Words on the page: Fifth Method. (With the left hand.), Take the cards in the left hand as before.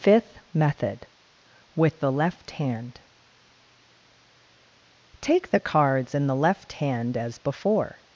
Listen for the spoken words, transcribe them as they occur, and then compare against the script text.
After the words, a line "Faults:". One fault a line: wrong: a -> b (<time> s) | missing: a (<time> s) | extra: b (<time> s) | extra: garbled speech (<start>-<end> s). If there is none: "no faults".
Fifth Method. (With the left hand.), Take the cards in the left hand as before.
Faults:
no faults